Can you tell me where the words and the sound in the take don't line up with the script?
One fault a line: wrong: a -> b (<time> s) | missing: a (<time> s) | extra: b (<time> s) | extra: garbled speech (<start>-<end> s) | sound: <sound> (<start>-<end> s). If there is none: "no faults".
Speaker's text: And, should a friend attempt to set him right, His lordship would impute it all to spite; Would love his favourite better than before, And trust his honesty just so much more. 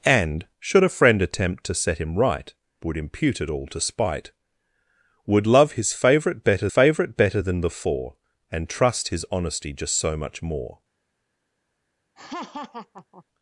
missing: His lordship (2.5 s)
extra: favourite better (6.7 s)
sound: laugh (12.2-13.2 s)